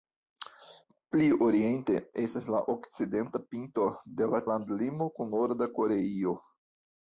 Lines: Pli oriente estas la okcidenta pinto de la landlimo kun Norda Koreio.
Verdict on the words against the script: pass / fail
pass